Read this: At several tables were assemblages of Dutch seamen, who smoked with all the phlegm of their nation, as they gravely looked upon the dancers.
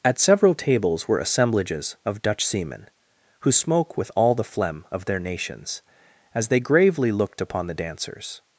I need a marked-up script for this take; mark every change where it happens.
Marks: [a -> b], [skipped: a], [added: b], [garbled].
At several tables were assemblages of Dutch seamen, who [smoked -> smoke] with all the phlegm of their [nation, -> nations] as they gravely looked upon the dancers.